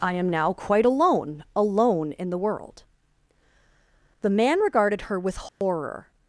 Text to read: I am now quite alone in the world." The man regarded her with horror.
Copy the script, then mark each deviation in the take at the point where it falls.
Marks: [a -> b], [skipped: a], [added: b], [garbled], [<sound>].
I am now quite alone [added: alone] in the world." The man regarded her with horror. [dropout]